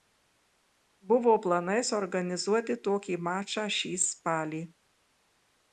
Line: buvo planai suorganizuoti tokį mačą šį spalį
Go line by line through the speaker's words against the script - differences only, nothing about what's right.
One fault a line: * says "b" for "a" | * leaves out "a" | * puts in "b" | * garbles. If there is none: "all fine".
all fine